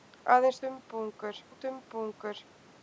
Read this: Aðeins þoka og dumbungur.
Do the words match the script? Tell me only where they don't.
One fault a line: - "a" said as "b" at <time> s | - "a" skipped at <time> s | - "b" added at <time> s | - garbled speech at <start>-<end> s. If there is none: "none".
- "þoka" said as "dumbungur" at 0.7 s